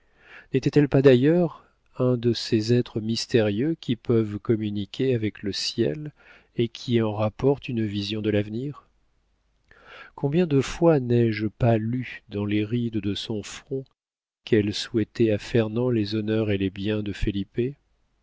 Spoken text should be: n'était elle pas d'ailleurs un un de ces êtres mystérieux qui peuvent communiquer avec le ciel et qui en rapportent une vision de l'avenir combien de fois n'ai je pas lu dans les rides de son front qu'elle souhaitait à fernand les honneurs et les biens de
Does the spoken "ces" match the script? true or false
true